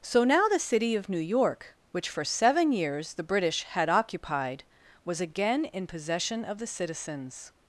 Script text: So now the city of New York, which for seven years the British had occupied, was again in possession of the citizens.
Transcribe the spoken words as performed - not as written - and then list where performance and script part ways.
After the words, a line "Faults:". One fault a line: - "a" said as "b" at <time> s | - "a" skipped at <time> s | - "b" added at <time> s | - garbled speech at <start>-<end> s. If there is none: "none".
So now the city of New York, which for seven years the British had occupied, was again in possession of the citizens.
Faults:
none